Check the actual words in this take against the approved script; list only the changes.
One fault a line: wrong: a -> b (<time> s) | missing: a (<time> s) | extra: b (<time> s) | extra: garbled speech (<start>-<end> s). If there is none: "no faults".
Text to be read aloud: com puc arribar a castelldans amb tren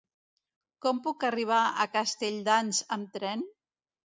no faults